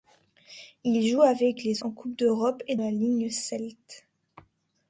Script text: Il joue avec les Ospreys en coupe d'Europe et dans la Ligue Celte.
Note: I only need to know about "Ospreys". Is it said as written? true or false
false